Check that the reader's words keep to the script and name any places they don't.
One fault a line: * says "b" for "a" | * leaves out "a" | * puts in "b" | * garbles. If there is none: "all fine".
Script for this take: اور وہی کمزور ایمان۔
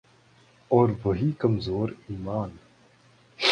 all fine